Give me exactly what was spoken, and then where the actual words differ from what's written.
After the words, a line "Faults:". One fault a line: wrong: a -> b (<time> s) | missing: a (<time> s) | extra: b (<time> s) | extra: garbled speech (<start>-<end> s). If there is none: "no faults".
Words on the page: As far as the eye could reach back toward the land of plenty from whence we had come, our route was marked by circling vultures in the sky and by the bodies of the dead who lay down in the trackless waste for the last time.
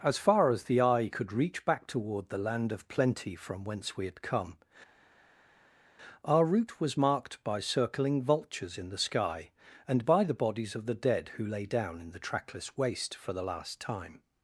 As far as the eye could reach back toward the land of plenty from whence we had come, our route was marked by circling vultures in the sky and by the bodies of the dead who lay down in the trackless waste for the last time.
Faults:
no faults